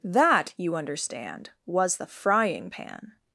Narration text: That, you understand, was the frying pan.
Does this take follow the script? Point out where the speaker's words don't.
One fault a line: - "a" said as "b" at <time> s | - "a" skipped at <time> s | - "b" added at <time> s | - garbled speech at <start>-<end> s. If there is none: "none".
none